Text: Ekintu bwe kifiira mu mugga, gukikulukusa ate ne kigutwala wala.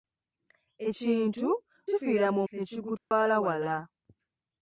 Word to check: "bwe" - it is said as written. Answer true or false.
false